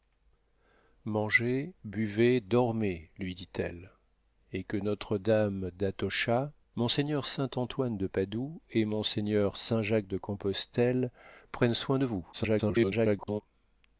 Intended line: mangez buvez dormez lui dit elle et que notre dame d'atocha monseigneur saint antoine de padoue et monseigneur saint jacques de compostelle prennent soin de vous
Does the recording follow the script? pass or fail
fail